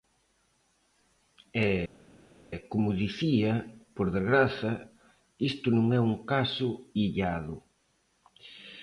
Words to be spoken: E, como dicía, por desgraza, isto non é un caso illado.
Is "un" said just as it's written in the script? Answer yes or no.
yes